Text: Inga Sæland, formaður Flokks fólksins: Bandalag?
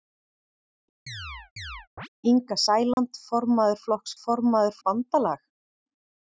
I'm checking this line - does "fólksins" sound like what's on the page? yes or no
no